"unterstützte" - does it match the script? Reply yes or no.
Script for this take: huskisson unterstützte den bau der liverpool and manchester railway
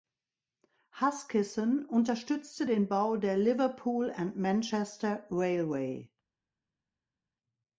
yes